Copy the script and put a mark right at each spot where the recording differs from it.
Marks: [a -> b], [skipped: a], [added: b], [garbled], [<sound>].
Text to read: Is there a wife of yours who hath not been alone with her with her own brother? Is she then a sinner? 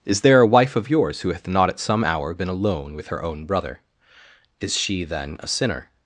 Is there a wife of yours who hath not [added: at some hour] been alone with her [skipped: with her] own brother? Is she then a sinner?